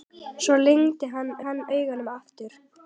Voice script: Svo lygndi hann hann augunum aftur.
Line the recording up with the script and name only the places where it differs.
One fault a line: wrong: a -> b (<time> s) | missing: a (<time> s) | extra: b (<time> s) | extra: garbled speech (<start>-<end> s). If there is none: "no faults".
no faults